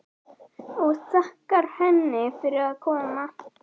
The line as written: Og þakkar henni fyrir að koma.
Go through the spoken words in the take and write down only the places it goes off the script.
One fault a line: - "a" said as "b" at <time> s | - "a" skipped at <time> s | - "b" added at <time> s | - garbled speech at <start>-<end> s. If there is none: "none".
none